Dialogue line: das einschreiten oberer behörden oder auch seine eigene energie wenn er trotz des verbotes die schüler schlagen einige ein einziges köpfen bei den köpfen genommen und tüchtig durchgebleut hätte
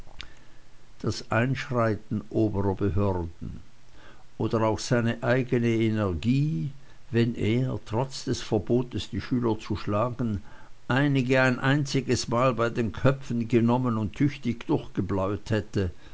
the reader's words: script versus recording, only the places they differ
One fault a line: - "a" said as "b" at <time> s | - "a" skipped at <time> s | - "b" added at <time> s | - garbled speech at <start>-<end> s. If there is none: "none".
- "zu" added at 9.6 s
- "köpfen" said as "mal" at 12.3 s